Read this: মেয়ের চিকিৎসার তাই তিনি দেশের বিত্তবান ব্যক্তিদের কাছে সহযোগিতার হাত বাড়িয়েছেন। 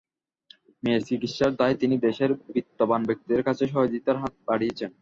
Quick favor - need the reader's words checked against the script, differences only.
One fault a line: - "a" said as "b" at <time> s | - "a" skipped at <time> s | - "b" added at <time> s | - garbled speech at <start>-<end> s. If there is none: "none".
none